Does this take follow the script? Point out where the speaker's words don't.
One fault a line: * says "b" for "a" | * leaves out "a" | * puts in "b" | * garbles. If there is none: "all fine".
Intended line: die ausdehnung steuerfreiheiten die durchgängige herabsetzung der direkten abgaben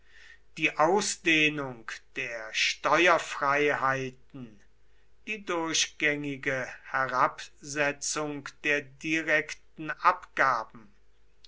* puts in "der"